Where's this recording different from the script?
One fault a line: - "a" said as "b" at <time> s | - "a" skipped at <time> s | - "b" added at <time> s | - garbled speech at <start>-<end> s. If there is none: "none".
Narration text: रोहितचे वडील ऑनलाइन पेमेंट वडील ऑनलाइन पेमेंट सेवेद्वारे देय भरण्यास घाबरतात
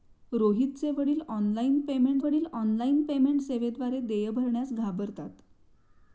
none